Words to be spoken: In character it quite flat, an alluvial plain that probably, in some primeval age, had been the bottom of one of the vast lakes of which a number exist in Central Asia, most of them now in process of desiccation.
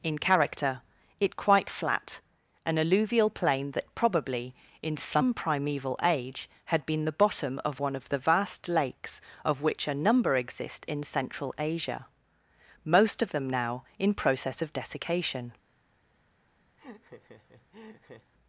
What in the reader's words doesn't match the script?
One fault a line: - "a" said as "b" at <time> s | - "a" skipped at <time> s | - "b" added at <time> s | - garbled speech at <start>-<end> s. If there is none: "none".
none